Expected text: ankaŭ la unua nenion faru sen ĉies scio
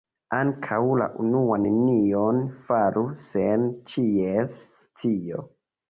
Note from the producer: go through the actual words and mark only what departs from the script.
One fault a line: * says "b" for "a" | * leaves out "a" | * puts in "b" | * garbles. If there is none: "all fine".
all fine